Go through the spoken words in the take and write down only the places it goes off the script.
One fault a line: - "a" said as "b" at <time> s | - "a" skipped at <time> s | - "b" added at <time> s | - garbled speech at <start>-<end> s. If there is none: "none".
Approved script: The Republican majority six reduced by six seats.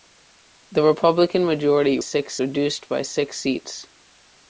none